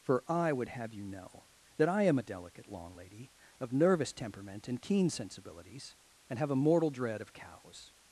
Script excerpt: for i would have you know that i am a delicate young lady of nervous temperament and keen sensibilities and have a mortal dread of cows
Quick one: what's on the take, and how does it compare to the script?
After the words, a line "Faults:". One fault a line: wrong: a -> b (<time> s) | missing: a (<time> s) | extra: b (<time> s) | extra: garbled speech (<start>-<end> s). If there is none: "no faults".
for i would have you know that i am a delicate long lady of nervous temperament and keen sensibilities and have a mortal dread of cows
Faults:
wrong: young -> long (2.7 s)